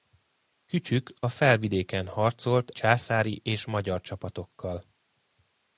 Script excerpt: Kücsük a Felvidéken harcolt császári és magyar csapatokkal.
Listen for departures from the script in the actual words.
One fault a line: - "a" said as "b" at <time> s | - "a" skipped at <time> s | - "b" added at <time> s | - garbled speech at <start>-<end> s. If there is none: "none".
none